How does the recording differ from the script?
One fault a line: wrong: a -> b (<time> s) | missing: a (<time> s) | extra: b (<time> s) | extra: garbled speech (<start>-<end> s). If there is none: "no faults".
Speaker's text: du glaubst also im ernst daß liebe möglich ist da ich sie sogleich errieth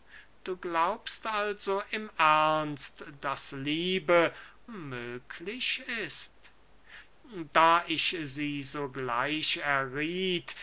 no faults